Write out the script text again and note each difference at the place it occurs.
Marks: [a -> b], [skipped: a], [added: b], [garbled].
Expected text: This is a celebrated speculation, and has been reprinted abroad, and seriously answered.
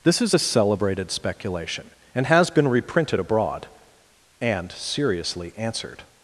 This is a celebrated speculation, and has been reprinted abroad, and seriously answered.